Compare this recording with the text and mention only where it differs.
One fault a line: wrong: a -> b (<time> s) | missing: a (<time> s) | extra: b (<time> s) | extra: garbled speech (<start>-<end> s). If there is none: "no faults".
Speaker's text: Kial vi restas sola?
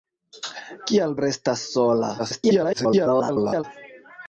missing: vi (1.1 s)
extra: garbled speech (2.2-3.6 s)